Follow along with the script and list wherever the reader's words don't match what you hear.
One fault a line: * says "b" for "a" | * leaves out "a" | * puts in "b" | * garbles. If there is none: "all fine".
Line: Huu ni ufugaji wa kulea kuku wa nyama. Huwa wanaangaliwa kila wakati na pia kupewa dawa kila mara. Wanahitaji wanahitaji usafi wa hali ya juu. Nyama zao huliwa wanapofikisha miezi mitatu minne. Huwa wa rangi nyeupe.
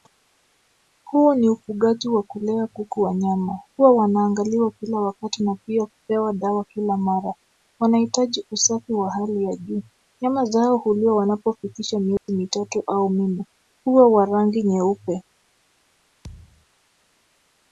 * leaves out "wanahitaji"
* puts in "au"